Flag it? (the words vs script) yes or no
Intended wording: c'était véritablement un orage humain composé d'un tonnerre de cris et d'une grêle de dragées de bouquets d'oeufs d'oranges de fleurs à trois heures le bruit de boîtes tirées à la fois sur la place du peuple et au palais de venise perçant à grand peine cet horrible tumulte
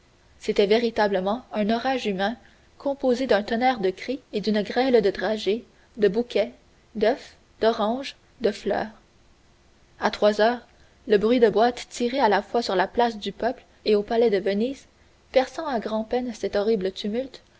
no